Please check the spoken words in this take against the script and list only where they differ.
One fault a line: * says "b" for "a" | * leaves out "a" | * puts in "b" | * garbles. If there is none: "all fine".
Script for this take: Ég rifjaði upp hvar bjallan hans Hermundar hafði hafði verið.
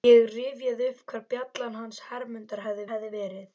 all fine